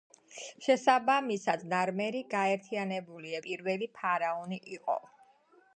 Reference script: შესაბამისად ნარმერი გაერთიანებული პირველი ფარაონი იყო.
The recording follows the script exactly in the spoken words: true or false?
true